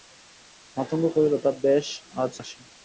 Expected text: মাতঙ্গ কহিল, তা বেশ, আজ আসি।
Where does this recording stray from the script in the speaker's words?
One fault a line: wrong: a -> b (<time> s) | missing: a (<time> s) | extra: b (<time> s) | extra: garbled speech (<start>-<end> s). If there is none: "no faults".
no faults